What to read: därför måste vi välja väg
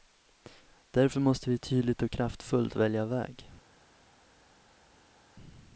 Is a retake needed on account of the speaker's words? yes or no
yes